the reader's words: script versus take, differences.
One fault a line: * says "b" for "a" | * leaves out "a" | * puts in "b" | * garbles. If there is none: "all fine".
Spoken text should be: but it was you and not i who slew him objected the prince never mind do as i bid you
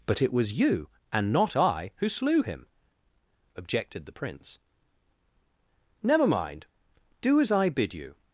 all fine